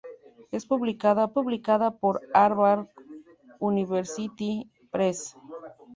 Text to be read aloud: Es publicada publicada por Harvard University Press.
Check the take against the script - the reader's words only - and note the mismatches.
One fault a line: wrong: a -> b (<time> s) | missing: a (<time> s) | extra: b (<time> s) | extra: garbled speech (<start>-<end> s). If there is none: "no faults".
no faults